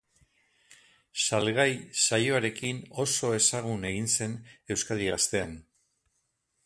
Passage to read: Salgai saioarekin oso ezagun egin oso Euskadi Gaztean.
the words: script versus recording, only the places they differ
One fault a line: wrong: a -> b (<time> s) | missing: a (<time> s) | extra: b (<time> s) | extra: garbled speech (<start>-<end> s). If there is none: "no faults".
wrong: oso -> zen (4.2 s)